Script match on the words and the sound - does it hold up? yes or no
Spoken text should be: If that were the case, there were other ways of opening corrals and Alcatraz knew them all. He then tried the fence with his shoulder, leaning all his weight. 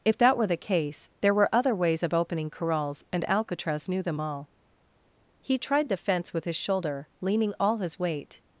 no